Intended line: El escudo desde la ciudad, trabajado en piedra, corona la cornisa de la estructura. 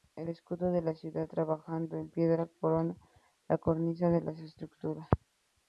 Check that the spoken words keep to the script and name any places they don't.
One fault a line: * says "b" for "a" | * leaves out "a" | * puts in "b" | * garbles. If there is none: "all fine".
* says "de" for "desde"